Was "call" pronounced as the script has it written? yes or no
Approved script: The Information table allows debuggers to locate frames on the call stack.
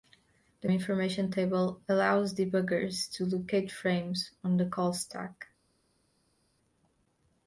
yes